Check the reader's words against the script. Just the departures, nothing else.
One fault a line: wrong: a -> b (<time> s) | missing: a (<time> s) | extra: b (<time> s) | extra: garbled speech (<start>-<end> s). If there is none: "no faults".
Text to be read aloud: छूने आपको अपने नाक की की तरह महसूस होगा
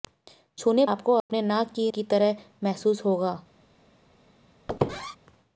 no faults